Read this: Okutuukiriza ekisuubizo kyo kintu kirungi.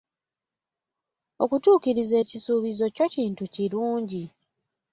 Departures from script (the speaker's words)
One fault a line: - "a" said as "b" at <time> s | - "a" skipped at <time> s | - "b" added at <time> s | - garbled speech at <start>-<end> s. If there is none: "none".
none